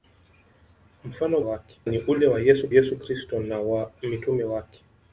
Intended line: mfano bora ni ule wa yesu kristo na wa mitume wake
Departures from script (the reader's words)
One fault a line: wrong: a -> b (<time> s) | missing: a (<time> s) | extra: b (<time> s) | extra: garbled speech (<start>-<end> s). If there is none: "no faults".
wrong: bora -> wake (1.4 s)
extra: yesu (2.7 s)